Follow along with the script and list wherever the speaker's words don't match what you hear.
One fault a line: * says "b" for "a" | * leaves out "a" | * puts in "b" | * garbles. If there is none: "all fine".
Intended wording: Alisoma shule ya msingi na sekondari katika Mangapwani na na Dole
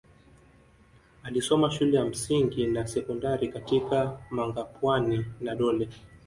* leaves out "na"